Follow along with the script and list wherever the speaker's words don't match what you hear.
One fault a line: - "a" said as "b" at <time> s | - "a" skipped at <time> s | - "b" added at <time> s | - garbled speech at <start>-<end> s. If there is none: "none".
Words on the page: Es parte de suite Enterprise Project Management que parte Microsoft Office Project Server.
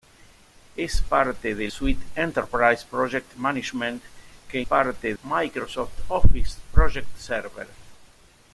none